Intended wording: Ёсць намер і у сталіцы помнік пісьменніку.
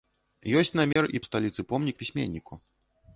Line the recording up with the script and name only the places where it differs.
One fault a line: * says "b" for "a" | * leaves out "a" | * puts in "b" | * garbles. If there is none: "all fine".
all fine